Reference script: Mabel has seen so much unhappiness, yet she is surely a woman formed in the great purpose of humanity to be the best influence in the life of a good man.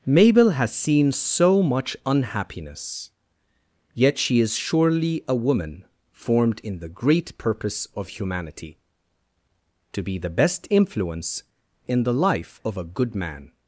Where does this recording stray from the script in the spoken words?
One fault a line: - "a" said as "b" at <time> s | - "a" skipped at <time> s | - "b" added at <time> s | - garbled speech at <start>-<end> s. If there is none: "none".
none